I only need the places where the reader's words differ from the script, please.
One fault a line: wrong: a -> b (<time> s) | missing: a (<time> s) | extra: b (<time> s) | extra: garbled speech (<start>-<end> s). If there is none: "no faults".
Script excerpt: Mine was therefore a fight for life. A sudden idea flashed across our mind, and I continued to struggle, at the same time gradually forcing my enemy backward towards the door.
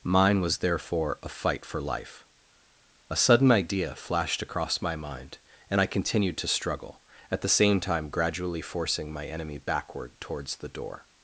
wrong: our -> my (4.8 s)